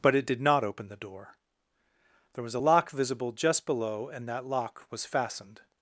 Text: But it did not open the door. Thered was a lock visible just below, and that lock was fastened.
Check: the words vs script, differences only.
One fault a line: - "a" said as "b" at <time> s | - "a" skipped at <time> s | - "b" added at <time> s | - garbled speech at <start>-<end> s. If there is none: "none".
- "Thered" said as "There" at 2.3 s